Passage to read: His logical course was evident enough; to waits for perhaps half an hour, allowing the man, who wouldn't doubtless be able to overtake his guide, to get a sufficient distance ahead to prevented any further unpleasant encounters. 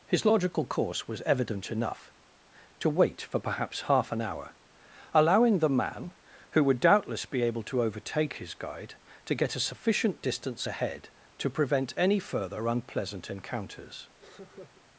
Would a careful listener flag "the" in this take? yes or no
no